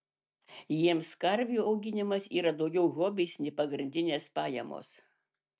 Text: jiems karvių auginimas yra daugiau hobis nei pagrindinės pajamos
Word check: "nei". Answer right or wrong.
right